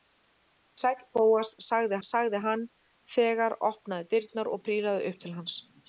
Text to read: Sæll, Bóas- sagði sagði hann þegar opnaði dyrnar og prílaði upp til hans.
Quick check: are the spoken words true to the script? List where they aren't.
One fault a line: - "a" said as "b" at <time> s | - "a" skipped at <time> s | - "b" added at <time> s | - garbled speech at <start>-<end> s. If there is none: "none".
none